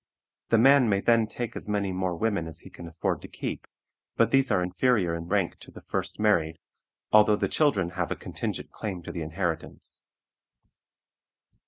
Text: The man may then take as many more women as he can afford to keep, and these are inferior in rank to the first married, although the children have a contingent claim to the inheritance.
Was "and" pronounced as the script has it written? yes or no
no